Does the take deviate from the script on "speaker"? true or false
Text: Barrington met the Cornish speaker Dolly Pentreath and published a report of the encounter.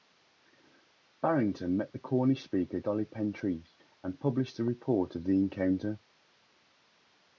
false